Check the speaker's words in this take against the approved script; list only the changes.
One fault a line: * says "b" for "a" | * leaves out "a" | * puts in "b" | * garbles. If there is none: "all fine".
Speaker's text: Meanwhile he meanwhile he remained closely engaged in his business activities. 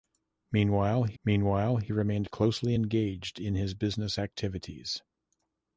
all fine